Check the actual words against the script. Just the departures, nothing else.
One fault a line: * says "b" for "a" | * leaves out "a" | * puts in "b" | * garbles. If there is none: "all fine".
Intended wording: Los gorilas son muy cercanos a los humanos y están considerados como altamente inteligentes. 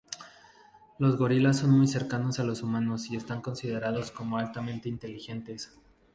all fine